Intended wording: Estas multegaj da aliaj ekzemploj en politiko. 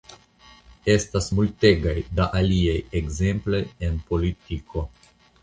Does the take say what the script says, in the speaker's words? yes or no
yes